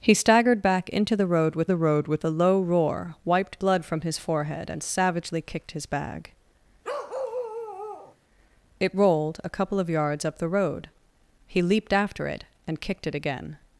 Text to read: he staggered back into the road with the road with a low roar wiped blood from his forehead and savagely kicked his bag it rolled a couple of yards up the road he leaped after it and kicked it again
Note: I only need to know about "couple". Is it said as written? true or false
true